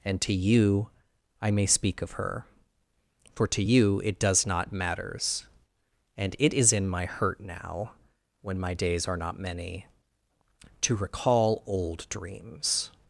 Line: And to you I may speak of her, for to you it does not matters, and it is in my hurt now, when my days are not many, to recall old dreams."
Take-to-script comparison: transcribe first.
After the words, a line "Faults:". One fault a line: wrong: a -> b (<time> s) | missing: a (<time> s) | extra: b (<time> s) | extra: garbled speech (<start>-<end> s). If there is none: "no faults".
And to you I may speak of her, for to you it does not matters, and it is in my hurt now, when my days are not many, to recall old dreams."
Faults:
no faults